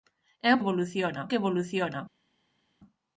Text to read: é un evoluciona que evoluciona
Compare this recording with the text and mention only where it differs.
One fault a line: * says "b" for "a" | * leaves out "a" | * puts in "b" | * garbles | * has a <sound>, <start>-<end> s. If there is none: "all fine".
all fine